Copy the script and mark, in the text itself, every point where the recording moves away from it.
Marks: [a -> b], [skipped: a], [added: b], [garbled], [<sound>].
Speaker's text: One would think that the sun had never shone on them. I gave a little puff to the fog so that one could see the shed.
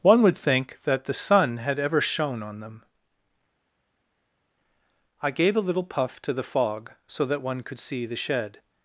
One would think that the sun had [never -> ever] shone on them. I gave a little puff to the fog so that one could see the shed.